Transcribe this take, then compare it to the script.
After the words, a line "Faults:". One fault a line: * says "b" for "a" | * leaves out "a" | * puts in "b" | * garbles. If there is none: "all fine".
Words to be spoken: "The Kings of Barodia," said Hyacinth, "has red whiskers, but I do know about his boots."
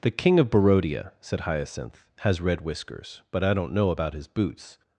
"The King of Barodia," said Hyacinth, "has red whiskers, but I don't know about his boots."
Faults:
* says "King" for "Kings"
* says "don't" for "do"